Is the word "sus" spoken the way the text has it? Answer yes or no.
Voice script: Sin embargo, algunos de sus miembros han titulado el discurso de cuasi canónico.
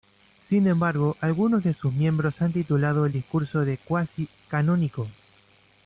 yes